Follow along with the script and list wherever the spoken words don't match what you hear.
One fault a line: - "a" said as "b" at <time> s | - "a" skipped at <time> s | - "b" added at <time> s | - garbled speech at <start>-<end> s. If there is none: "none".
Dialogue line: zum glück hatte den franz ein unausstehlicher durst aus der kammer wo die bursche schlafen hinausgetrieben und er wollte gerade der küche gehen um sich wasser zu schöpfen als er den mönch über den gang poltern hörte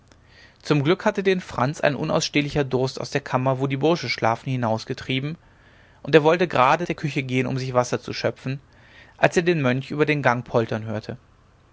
none